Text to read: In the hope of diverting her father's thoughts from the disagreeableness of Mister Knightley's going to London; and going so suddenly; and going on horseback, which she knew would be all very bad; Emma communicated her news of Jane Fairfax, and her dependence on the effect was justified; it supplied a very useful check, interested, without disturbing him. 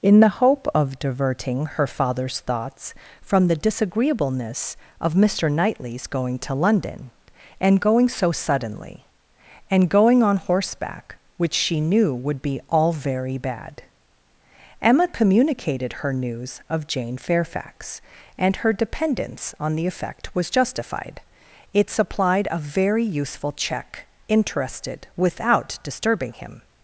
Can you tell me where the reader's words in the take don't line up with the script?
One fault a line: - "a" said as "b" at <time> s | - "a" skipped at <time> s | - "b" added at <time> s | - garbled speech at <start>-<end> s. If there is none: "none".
none